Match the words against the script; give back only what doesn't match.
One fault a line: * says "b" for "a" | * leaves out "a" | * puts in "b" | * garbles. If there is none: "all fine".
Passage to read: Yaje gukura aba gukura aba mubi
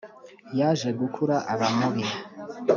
* leaves out "gukura aba"